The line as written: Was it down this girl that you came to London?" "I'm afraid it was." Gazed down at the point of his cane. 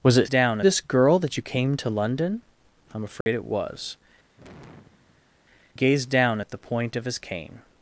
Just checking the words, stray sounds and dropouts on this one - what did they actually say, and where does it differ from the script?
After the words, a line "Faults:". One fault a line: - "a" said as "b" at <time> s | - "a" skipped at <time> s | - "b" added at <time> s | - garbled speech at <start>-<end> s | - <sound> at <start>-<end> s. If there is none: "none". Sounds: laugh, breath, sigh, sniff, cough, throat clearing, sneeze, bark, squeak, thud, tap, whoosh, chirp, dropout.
Was it down this girl that you came to London?" "I'm afraid it was." Gazed down at the point of his cane.
Faults:
- dropout at 3.2-3.3 s
- sigh at 4.4-5.4 s